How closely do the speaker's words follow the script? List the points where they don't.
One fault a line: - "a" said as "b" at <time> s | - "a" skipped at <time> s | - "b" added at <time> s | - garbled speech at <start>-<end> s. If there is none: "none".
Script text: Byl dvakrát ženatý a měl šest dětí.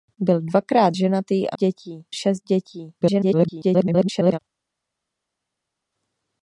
- "měl" said as "dětí" at 1.5 s
- garbled speech at 3.0-4.4 s